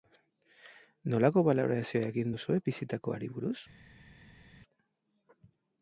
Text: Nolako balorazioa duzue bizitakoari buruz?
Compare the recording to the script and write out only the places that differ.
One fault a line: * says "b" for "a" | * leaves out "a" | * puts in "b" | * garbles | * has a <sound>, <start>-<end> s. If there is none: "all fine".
* puts in "egin"